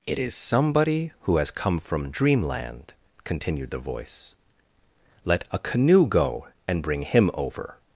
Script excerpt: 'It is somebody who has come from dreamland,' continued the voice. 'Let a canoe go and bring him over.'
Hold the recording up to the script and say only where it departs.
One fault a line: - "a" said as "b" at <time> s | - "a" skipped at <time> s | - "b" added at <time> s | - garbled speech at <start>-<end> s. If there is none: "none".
none